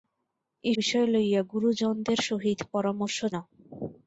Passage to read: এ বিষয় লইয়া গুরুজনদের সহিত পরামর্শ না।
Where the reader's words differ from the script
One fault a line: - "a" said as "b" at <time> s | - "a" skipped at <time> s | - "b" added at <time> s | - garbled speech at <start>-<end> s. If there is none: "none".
none